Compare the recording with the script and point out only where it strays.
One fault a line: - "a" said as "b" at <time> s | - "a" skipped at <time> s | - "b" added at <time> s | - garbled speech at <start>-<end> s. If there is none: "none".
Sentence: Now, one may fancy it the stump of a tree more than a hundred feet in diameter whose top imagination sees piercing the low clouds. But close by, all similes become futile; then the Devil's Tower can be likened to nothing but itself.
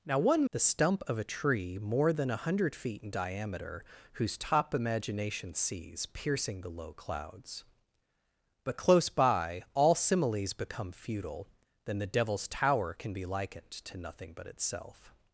- "may fancy it" skipped at 0.5 s